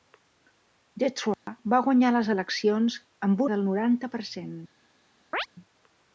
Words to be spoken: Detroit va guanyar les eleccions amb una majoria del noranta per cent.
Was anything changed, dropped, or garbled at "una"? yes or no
yes